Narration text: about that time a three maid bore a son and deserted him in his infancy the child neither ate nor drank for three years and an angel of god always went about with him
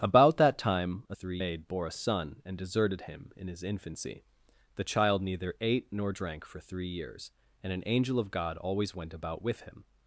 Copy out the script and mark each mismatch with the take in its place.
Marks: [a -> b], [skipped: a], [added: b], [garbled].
about that time a three maid bore a son and deserted him in his infancy the child neither ate nor drank for three years and an angel of god always went about with him